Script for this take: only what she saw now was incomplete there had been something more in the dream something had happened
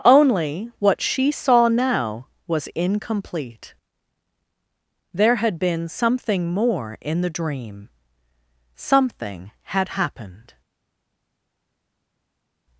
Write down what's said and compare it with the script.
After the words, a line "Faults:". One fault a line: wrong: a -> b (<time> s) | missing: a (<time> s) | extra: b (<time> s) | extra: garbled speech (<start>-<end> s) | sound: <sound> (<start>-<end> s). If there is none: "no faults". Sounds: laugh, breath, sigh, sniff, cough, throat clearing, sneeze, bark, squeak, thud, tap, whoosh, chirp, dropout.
only what she saw now was incomplete there had been something more in the dream something had happened
Faults:
no faults